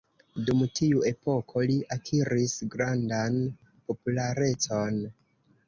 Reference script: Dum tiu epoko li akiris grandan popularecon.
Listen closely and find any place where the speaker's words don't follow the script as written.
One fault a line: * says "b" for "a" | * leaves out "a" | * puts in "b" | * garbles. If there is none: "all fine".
all fine